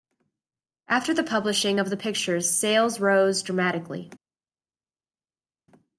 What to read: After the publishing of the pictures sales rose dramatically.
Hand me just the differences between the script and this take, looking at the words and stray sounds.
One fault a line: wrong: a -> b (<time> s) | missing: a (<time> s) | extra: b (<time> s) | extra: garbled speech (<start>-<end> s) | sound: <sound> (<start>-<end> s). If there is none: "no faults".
no faults